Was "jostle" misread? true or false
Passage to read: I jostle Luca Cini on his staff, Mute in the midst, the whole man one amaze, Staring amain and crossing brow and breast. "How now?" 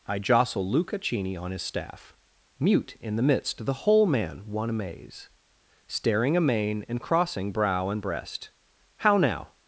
false